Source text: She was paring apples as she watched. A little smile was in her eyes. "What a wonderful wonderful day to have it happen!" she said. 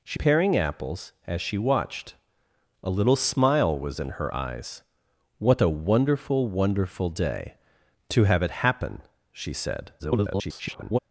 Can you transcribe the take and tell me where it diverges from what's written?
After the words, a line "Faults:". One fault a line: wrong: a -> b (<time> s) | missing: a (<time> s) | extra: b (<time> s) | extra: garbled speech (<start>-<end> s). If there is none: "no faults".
She paring apples as she watched. A little smile was in her eyes. "What a wonderful wonderful day to have it happen!" she said. [garbled]
Faults:
missing: was (0.2 s)
extra: garbled speech (10.0-11.0 s)